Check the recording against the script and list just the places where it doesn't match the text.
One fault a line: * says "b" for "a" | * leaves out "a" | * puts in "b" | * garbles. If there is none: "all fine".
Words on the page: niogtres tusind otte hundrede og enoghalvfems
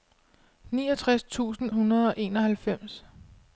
* leaves out "otte"